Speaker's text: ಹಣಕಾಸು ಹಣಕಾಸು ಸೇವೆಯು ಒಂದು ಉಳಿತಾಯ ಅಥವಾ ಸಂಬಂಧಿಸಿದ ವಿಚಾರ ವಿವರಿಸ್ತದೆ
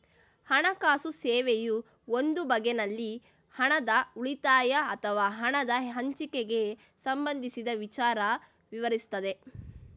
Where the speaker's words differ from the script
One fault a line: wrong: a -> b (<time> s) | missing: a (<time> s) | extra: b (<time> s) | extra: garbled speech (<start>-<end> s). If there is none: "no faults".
missing: ಹಣಕಾಸು (1.1 s)
extra: ಬಗೆನಲ್ಲಿ ಹಣದ (2.4 s)
extra: ಹಣದ ಹಂಚಿಕೆಗೆ (5.4 s)